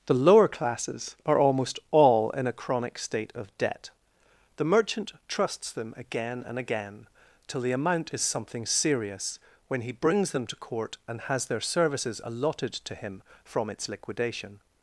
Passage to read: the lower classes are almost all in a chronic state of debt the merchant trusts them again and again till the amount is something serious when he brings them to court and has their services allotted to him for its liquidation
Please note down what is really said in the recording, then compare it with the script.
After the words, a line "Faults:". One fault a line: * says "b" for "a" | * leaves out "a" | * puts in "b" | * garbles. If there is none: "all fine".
the lower classes are almost all in a chronic state of debt the merchant trusts them again and again till the amount is something serious when he brings them to court and has their services allotted to him from its liquidation
Faults:
* says "from" for "for"